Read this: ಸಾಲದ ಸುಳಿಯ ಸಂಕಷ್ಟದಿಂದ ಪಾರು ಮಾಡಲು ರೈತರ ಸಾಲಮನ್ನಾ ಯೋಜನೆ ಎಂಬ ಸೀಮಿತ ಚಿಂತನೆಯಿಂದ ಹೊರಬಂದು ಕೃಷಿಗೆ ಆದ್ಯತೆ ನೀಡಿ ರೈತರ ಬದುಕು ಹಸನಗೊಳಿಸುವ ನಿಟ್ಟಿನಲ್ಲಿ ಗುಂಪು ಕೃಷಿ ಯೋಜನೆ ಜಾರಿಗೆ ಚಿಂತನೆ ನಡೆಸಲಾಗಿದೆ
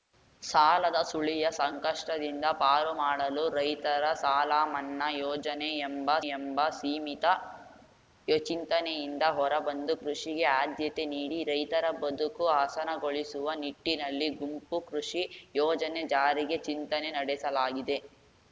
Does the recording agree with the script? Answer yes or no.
no